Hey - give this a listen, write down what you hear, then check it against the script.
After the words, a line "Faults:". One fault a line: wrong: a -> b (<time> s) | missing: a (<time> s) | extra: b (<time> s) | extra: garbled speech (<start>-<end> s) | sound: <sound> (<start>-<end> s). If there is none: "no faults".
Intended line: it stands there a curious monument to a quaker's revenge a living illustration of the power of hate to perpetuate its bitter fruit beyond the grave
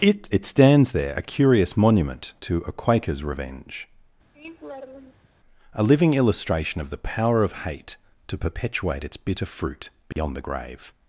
it it stands there a curious monument to a quaker's revenge a living illustration of the power of hate to perpetuate its bitter fruit beyond the grave
Faults:
extra: it (0.3 s)
sound: laugh (4.3-5.3 s)
sound: dropout (10.1-10.2 s)